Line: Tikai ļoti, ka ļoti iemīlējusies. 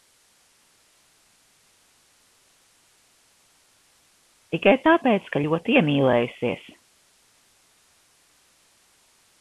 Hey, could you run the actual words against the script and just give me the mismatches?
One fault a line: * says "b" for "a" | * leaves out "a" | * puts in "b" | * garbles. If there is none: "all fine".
* says "tāpēc" for "ļoti"